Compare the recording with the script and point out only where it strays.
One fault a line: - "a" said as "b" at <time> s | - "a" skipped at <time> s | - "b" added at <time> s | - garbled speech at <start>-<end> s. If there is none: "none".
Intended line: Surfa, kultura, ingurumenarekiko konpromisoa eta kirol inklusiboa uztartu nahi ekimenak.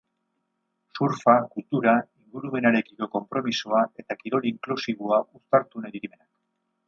none